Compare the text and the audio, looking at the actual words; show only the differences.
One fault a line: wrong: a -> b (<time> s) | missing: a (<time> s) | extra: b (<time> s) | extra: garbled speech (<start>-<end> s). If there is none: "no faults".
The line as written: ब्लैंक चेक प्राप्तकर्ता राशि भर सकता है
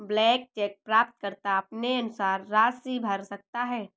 extra: अपने अनुसार (1.6 s)